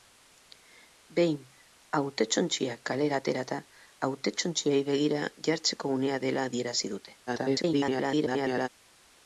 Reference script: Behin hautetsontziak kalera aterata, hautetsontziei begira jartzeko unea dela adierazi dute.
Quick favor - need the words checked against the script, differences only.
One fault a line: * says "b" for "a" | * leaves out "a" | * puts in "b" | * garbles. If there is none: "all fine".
* garbles